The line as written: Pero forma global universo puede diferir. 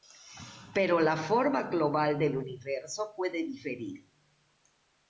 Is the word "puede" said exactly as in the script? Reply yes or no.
yes